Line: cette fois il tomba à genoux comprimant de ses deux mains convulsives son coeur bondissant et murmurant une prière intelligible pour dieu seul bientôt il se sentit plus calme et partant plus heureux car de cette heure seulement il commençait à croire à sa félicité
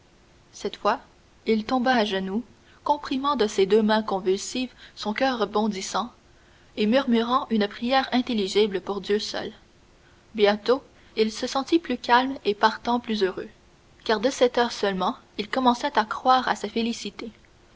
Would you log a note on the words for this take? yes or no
no